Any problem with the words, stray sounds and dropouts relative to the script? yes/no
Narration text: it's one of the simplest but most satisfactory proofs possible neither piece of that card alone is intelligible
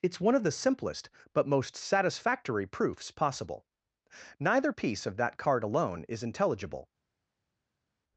no